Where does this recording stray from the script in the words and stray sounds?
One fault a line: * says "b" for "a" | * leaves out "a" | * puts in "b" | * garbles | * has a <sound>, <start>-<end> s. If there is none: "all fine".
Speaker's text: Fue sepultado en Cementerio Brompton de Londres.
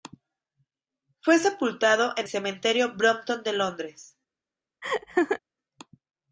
* has a laugh, 4.8-5.4 s